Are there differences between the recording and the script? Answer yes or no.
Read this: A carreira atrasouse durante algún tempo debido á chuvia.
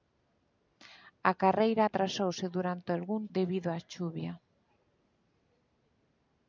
yes